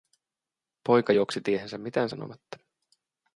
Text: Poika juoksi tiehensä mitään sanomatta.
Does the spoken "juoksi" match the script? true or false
true